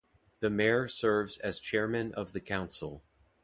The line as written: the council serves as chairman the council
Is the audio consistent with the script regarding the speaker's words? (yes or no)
no